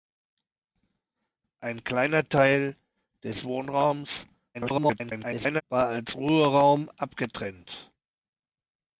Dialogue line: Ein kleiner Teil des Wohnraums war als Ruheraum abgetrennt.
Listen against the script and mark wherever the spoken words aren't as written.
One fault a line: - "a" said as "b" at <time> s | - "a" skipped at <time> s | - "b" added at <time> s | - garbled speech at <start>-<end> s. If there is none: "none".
- garbled speech at 4.5-5.6 s